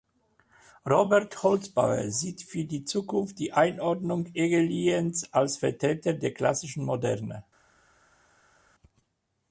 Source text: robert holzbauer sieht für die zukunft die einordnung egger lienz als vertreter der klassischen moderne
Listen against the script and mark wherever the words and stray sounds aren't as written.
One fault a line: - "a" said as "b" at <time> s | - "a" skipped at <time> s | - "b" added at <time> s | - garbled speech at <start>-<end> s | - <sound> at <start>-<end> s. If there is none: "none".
none